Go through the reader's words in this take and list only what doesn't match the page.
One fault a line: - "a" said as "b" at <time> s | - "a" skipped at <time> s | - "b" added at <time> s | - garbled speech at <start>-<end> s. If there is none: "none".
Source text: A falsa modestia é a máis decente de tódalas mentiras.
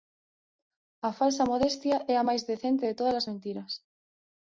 none